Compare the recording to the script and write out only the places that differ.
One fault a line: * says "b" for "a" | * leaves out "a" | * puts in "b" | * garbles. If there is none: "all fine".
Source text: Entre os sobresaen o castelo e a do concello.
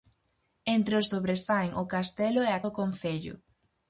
all fine